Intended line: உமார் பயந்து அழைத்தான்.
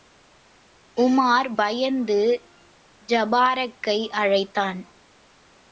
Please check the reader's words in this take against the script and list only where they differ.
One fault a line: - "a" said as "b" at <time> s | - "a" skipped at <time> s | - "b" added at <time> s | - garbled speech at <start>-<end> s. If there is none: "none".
- "ஜபாரக்கை" added at 3.1 s